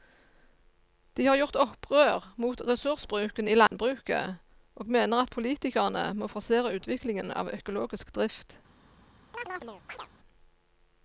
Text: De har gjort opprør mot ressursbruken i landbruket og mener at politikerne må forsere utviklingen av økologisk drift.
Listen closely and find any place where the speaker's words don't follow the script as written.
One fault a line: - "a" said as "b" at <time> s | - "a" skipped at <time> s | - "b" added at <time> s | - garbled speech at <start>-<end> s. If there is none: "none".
none